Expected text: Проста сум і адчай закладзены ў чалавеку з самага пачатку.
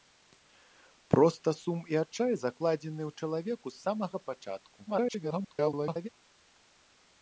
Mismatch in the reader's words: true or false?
true